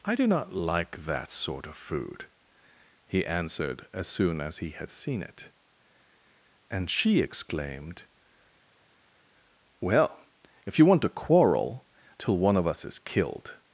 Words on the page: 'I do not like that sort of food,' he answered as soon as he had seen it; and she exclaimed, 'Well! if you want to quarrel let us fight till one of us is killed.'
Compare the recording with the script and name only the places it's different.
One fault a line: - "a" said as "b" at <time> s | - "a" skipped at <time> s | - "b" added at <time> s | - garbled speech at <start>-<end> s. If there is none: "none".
- "let us fight" skipped at 11.8 s